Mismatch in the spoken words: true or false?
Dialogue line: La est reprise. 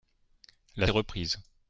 false